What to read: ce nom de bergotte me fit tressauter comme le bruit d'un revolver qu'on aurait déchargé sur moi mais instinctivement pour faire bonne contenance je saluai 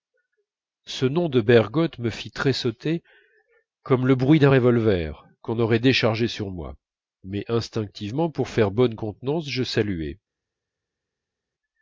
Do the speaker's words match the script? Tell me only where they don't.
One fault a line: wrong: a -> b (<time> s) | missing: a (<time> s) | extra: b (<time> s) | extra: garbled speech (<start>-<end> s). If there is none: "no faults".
no faults